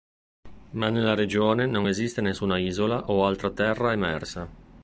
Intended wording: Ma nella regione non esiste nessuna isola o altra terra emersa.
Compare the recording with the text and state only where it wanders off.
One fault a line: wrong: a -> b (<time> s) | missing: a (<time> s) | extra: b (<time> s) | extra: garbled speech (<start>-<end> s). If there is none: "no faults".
no faults